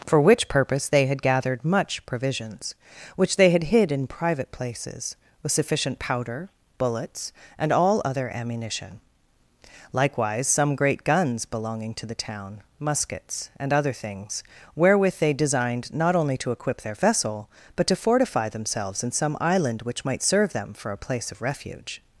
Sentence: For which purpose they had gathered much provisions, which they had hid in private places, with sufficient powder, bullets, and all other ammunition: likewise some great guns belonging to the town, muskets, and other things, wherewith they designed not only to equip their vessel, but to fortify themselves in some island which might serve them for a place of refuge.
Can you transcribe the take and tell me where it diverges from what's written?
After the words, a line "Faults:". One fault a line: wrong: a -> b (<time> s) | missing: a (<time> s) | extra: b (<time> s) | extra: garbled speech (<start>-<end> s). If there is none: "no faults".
For which purpose they had gathered much provisions, which they had hid in private places, with sufficient powder, bullets, and all other ammunition: likewise some great guns belonging to the town, muskets, and other things, wherewith they designed not only to equip their vessel, but to fortify themselves in some island which might serve them for a place of refuge.
Faults:
no faults